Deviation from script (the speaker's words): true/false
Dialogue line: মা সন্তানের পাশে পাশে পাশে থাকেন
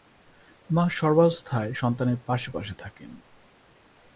true